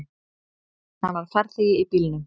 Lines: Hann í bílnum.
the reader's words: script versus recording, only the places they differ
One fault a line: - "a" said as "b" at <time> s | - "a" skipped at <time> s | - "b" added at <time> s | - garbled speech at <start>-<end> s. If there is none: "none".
- "var farþegi" added at 1.2 s